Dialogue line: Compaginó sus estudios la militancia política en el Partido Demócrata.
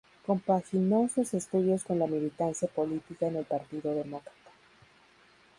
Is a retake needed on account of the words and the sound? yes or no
yes